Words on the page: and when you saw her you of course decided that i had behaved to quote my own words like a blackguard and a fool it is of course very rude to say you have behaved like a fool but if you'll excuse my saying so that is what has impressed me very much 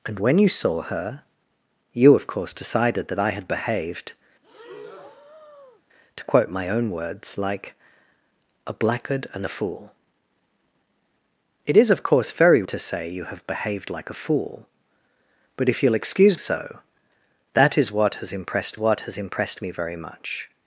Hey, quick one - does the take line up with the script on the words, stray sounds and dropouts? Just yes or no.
no